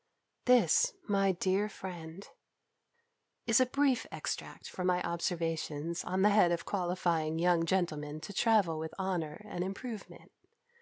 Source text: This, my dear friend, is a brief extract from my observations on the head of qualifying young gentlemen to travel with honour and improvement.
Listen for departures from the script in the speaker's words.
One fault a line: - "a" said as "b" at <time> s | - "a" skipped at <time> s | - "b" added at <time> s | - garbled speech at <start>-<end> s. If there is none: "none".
none